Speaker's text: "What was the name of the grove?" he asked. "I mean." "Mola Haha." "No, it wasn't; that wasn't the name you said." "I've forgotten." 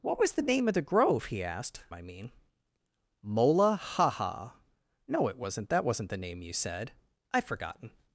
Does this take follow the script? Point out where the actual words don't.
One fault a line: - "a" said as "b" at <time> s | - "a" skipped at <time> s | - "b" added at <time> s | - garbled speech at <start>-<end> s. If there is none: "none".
none